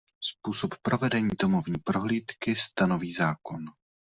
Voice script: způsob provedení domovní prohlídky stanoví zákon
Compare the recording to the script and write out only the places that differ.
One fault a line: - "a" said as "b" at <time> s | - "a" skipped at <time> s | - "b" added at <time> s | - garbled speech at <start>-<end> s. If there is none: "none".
none